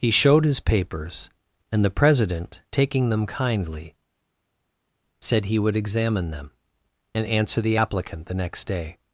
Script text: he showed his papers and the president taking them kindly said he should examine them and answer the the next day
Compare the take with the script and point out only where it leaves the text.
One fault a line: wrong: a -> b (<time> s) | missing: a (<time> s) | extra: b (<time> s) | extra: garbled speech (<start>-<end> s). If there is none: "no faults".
wrong: should -> would (5.6 s)
extra: applicant (7.7 s)